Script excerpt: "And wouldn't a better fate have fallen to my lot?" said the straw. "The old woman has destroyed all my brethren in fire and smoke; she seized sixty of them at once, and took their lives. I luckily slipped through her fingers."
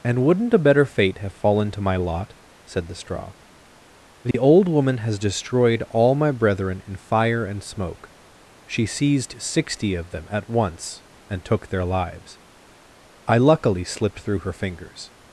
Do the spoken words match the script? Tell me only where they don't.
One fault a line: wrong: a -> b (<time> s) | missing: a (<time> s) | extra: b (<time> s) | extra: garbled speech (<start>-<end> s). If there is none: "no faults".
no faults